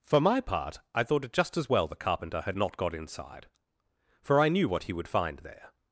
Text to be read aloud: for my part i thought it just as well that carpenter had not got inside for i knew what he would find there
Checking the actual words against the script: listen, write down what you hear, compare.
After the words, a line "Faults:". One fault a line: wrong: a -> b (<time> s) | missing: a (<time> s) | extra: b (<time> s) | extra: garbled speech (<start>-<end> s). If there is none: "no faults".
for my part i thought it just as well the carpenter had not got inside for i knew what he would find there
Faults:
wrong: that -> the (1.9 s)